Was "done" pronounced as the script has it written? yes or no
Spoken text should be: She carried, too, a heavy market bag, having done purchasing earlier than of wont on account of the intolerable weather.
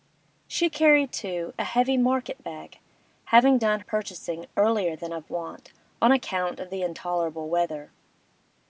yes